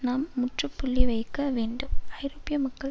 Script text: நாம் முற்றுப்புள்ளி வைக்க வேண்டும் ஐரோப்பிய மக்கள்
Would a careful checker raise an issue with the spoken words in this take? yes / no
no